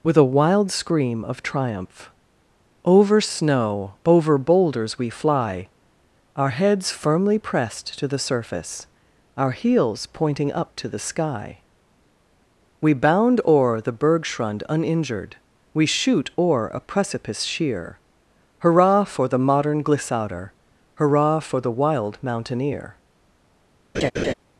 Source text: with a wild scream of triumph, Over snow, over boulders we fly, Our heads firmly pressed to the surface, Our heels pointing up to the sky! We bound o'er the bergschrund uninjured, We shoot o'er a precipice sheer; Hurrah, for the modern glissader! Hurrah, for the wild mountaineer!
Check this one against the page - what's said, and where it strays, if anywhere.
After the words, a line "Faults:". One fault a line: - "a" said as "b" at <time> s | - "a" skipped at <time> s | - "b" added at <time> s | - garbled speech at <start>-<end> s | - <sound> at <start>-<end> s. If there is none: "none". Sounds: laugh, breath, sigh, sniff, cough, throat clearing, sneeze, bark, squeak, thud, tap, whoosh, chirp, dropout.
with a wild scream of triumph, Over snow, over boulders we fly, Our heads firmly pressed to the surface, Our heels pointing up to the sky! We bound o'er the bergschrund uninjured, We shoot o'er a precipice sheer; Hurrah, for the modern glissader! Hurrah, for the wild mountaineer!
Faults:
- laugh at 23.9-24.3 s